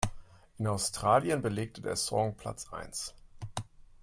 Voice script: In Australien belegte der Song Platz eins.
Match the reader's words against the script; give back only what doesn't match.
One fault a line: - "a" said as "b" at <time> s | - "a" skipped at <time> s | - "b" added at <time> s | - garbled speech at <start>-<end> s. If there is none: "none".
none